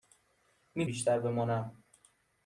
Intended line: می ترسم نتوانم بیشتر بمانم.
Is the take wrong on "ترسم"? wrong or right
wrong